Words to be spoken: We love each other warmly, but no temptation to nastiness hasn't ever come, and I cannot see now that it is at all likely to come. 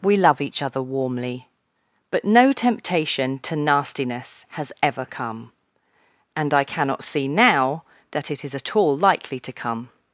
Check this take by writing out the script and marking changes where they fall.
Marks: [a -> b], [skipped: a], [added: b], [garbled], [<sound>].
We love each other warmly, but no temptation to nastiness [hasn't -> has] ever come, and I cannot see now that it is at all likely to come.